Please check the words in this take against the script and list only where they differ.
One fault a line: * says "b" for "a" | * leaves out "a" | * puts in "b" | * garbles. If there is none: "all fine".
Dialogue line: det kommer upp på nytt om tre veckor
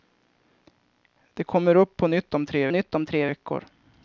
* puts in "nytt om tre"